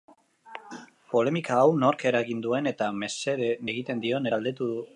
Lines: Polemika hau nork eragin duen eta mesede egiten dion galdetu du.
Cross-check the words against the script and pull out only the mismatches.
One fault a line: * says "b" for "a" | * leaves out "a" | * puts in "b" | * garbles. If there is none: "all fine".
all fine